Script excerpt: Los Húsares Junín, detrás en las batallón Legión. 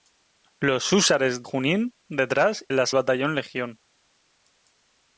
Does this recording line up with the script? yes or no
yes